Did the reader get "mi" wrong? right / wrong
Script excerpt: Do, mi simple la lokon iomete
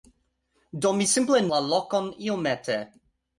right